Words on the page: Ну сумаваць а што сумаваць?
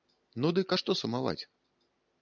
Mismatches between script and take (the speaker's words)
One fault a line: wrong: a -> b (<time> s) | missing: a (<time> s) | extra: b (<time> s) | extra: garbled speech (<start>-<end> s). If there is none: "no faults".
wrong: сумаваць -> дык (0.6 s)